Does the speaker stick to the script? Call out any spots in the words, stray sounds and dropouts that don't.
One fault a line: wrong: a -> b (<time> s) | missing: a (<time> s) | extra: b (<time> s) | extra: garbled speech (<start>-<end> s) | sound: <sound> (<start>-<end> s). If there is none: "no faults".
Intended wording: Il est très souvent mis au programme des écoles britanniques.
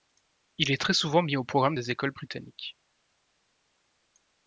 no faults